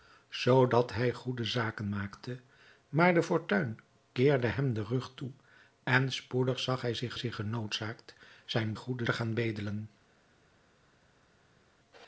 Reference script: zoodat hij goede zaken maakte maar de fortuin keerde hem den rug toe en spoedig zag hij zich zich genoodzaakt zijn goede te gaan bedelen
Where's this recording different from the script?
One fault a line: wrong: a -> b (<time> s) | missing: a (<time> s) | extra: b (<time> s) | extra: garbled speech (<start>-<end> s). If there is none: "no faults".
no faults